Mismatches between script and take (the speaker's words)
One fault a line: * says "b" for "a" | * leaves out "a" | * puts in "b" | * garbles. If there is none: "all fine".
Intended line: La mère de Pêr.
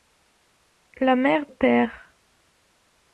* leaves out "de"